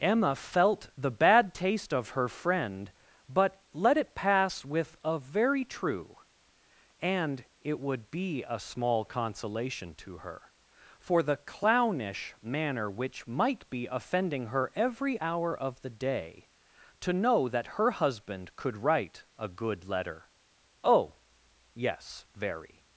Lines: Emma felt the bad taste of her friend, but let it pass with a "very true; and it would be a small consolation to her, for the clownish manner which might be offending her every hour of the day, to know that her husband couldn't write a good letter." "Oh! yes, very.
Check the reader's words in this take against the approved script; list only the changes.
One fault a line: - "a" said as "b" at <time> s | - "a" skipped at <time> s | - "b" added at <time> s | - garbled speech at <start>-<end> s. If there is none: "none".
- "couldn't" said as "could" at 18.6 s